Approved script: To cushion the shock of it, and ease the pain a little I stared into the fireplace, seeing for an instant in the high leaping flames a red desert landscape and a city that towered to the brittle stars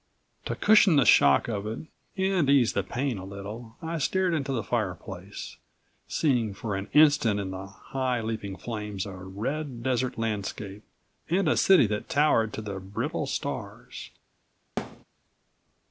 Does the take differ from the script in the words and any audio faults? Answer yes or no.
yes